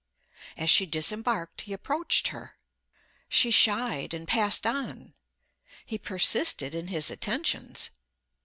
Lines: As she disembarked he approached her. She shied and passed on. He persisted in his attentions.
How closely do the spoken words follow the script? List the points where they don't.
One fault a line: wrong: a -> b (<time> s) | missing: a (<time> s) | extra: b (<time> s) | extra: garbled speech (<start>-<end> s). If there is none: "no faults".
no faults